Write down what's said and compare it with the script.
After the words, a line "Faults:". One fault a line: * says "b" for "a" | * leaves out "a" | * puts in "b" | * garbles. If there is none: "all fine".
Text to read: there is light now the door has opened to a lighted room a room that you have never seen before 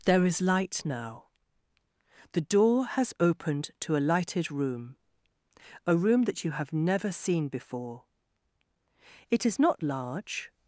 there is light now the door has opened to a lighted room a room that you have never seen before it is not large
Faults:
* puts in "it is not large"